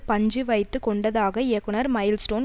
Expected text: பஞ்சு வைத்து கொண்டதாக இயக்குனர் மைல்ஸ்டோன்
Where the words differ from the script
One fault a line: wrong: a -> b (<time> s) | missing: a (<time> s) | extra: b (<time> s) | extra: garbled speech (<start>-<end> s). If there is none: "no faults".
no faults